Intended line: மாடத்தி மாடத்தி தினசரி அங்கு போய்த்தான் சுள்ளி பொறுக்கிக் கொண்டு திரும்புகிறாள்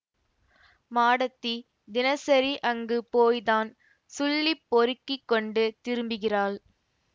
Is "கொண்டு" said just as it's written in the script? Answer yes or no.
yes